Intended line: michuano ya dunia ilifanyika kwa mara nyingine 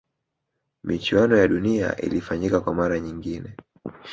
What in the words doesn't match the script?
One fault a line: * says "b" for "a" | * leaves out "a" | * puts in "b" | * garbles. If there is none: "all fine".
all fine